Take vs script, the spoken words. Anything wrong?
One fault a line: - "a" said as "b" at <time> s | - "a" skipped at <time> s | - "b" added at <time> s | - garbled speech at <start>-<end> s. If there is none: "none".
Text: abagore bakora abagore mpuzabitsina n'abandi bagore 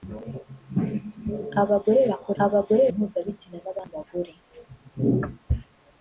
none